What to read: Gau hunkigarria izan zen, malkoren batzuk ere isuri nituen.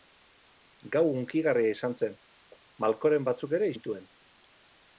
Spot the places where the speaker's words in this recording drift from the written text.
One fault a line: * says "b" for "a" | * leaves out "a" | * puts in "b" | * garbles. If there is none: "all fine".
* leaves out "isuri"